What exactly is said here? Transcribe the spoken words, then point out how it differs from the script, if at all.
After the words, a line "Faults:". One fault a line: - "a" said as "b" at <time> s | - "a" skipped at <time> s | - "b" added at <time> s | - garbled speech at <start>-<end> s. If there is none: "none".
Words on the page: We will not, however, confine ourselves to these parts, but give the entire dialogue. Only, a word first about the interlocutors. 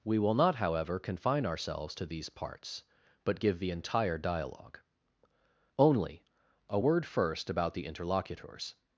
We will not, however, confine ourselves to these parts, but give the entire dialogue. Only, a word first about the interlocutors.
Faults:
none